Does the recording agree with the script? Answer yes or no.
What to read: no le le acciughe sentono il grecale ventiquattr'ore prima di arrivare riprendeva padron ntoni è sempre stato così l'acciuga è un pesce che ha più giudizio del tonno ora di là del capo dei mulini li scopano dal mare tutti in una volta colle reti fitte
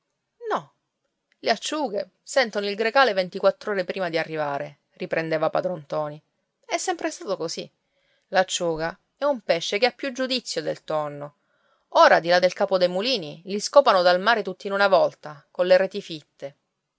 no